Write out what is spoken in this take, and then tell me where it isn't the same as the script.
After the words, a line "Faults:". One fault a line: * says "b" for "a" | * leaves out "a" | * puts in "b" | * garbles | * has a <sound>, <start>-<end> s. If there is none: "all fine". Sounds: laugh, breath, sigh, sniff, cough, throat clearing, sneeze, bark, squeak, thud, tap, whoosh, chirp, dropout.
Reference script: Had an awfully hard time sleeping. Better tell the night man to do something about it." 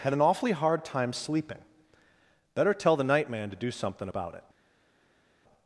Had an awfully hard time sleeping. Better tell the night man to do something about it."
Faults:
all fine